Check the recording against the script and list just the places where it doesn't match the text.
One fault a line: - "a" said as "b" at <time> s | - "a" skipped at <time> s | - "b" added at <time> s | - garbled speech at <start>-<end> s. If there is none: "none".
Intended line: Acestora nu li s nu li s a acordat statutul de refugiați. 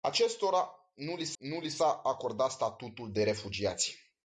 none